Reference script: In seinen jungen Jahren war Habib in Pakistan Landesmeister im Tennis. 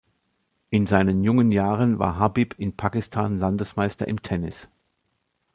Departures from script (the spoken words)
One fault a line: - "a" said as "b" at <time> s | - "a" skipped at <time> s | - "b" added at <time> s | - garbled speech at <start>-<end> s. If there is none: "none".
none